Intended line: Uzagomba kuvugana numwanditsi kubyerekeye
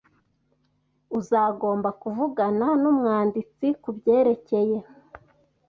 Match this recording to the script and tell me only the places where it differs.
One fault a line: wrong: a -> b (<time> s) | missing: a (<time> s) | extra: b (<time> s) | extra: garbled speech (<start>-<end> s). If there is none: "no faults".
no faults